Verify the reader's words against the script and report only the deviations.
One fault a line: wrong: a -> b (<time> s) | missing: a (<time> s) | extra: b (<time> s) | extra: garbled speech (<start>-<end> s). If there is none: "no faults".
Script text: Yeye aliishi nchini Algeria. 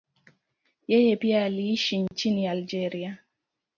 extra: pia (1.1 s)